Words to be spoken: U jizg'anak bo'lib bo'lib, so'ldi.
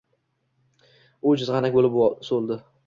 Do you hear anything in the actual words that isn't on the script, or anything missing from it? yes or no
yes